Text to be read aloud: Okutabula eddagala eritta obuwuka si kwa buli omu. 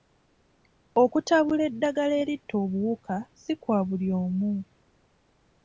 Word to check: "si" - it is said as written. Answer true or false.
true